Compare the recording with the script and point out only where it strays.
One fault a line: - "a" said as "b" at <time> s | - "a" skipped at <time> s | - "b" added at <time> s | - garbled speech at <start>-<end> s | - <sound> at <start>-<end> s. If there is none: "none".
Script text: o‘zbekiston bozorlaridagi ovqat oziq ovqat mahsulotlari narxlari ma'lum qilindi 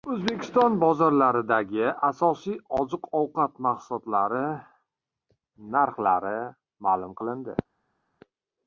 - "ovqat" said as "asosiy" at 2.1 s